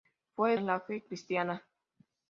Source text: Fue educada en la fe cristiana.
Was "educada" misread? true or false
true